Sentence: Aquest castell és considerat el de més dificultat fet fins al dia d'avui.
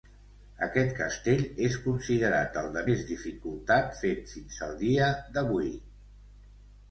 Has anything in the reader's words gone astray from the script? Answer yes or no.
no